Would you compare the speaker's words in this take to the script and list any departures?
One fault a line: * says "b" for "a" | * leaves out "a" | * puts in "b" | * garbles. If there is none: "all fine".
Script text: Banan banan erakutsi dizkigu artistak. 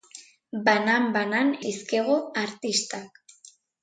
* leaves out "erakutsi"